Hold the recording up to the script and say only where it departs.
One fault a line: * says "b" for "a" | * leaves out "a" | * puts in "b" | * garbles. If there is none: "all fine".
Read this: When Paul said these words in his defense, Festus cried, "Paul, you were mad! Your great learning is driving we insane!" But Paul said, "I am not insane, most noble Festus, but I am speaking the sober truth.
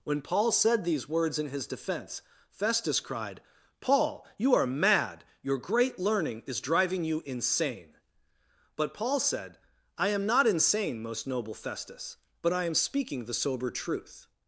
* says "are" for "were"
* says "you" for "we"